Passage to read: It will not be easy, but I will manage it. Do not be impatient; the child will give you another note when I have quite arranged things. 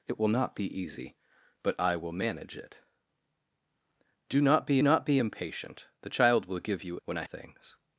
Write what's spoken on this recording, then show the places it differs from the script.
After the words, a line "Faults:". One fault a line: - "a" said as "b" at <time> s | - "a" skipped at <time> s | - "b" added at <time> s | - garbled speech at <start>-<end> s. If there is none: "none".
It will not be easy, but I will manage it. Do not be not be impatient; the child will give you when I things.
Faults:
- "not be" added at 4.8 s
- "another note" skipped at 7.0 s
- "have quite arranged" skipped at 7.2 s